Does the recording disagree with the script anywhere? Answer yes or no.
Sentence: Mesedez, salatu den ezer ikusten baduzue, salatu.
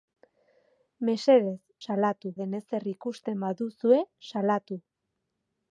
no